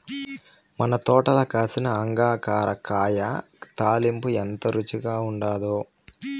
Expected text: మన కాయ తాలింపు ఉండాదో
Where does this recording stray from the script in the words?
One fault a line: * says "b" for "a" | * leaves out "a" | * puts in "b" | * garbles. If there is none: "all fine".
* puts in "తోటల కాసిన అంగాకర"
* puts in "ఎంత రుచిగా"